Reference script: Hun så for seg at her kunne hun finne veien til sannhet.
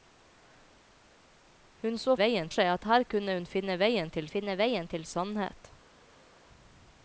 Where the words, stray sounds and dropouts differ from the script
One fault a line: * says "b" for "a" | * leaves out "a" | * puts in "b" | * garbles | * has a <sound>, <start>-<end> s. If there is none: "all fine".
* says "veien" for "for"
* puts in "finne veien til"